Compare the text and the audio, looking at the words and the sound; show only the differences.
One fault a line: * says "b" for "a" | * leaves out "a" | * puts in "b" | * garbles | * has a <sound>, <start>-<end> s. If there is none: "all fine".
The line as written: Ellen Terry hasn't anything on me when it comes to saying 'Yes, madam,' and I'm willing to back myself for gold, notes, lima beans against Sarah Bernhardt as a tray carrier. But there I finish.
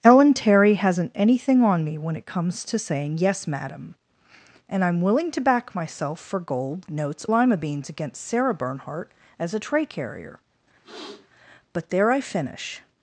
* has a sniff, 10.8-11.3 s